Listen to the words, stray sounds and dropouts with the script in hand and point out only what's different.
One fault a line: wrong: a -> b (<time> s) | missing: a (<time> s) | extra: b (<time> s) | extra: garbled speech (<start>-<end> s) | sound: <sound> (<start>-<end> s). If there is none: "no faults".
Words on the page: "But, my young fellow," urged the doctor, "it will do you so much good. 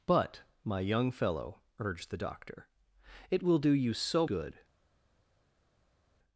missing: much (4.2 s)